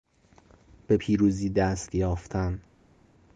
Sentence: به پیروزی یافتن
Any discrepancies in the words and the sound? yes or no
yes